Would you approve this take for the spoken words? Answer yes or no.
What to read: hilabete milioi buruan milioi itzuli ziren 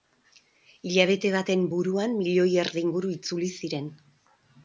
no